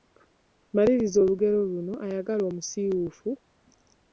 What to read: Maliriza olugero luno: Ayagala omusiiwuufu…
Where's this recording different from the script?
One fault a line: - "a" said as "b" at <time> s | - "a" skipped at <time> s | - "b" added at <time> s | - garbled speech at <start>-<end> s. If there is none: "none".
none